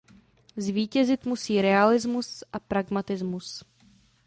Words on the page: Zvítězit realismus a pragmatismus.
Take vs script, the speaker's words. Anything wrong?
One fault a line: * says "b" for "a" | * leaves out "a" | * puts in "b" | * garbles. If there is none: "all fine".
* puts in "musí"